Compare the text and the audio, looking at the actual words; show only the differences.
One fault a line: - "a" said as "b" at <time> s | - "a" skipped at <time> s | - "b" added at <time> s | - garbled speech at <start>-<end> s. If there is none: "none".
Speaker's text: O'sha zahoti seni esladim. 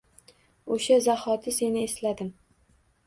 none